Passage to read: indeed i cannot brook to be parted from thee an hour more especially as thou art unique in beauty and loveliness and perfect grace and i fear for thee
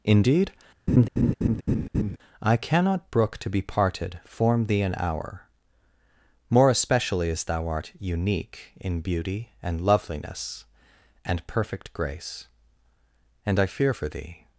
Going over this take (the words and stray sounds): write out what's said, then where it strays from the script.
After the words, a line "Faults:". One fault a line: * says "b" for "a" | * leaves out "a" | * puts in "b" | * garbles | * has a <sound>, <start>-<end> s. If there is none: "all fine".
indeed i cannot brook to be parted form thee an hour more especially as thou art unique in beauty and loveliness and perfect grace and i fear for thee
Faults:
* has a laugh, 0.9-2.2 s
* says "form" for "from"